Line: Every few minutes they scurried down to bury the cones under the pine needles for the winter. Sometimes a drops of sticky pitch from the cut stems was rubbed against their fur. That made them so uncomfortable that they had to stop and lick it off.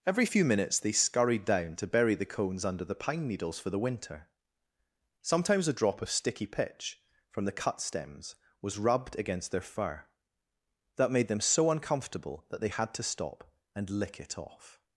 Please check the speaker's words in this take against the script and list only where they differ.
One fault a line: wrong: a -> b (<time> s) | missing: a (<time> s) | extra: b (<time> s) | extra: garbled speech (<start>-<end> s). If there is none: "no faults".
wrong: drops -> drop (5.7 s)